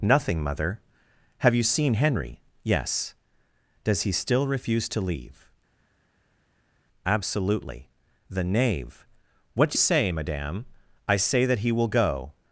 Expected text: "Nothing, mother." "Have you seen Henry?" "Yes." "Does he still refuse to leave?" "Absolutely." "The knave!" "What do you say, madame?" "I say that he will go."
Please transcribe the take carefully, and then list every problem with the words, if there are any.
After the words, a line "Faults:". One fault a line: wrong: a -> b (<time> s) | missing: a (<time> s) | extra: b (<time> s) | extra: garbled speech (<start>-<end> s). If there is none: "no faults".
"Nothing, mother." "Have you seen Henry?" "Yes." "Does he still refuse to leave?" "Absolutely." "The knave!" "What do say, madame?" "I say that he will go."
Faults:
missing: you (9.8 s)